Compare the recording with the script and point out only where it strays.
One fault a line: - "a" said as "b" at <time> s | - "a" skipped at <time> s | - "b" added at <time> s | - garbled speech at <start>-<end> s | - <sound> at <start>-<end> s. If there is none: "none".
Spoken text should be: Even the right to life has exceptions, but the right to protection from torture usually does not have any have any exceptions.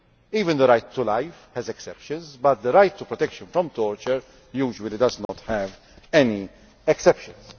- dropout at 5.3-5.3 s
- "have any" skipped at 6.5 s